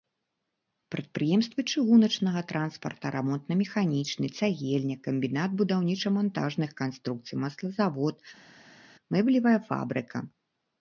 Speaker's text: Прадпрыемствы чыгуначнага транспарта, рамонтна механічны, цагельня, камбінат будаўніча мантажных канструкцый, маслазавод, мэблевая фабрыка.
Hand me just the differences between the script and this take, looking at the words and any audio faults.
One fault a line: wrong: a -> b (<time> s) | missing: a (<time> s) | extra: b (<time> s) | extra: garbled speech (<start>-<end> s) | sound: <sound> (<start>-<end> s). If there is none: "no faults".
no faults